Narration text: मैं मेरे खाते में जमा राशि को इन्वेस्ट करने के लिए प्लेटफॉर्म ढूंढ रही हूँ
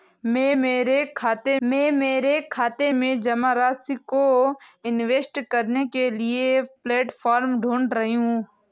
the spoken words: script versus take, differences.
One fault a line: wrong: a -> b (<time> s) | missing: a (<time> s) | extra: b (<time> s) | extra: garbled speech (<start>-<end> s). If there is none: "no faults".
extra: मैं मेरे खाते (1.6 s)